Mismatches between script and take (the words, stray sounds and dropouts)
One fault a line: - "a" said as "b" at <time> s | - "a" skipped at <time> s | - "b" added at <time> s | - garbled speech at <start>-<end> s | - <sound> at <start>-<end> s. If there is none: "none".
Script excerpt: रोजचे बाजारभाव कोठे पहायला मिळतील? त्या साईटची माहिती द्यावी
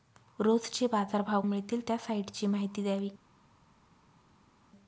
- "कोठे पहायला" skipped at 1.4 s